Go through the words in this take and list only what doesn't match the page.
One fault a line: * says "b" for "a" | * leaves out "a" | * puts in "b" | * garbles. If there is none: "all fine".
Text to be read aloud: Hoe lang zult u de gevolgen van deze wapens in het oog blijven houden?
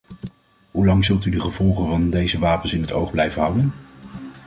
all fine